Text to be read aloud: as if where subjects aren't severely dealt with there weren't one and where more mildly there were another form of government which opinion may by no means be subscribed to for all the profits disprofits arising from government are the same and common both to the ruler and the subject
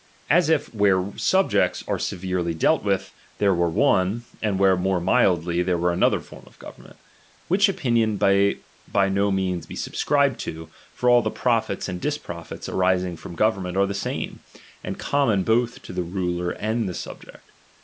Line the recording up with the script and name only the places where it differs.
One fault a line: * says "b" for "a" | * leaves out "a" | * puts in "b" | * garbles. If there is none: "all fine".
* says "are" for "aren't"
* says "were" for "weren't"
* puts in "and"